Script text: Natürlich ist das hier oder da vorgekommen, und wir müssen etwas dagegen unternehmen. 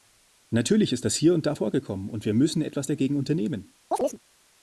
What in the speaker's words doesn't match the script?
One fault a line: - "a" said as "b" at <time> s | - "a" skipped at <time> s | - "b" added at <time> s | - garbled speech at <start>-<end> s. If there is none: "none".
- "oder" said as "und" at 1.3 s